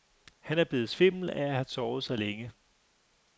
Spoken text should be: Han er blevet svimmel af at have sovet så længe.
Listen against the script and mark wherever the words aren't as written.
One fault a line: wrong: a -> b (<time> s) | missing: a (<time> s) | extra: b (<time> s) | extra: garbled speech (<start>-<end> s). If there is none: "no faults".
no faults